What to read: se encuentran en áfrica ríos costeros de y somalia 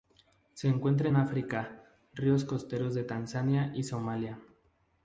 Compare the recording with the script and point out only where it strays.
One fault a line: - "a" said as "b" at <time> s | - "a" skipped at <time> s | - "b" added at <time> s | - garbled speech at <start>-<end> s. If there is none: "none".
- "tanzania" added at 3.0 s